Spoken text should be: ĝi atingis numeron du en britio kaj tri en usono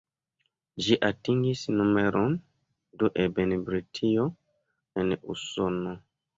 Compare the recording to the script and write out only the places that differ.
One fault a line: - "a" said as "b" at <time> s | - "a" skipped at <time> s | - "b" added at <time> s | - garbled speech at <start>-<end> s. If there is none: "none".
- "kaj tri" skipped at 4.3 s